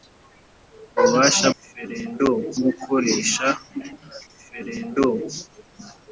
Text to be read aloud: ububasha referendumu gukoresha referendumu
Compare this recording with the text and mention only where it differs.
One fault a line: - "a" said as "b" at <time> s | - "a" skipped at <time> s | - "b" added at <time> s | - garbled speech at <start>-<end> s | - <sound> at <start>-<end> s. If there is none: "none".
none